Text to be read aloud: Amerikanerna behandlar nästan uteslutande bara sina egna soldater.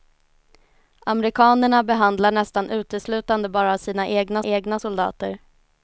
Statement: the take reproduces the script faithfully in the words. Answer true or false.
false